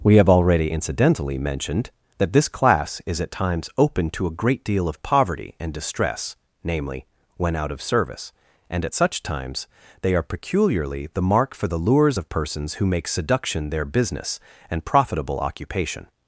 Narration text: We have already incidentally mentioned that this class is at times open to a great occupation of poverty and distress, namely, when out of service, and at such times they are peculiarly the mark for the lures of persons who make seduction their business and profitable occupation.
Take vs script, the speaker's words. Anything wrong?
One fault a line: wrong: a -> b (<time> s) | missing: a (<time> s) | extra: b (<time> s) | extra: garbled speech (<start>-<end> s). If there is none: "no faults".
wrong: occupation -> deal (4.6 s)